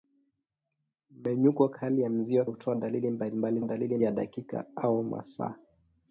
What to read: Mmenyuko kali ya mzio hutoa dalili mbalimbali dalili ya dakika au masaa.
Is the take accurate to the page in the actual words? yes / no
yes